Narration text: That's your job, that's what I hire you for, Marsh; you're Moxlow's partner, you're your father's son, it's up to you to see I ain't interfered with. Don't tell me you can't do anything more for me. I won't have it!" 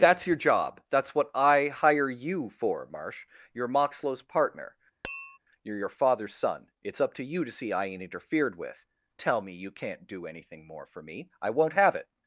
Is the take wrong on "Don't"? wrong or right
wrong